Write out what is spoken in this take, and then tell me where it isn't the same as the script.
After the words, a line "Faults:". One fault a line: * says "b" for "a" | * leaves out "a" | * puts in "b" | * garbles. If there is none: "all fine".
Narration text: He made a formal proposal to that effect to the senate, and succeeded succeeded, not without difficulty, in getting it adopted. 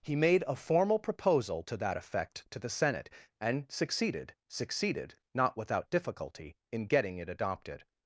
He made a formal proposal to that effect to the senate, and succeeded succeeded, not without difficulty, in getting it adopted.
Faults:
all fine